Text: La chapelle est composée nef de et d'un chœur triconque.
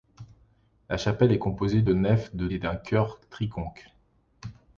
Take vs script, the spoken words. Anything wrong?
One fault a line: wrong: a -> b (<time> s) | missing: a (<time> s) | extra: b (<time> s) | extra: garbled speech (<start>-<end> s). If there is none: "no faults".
no faults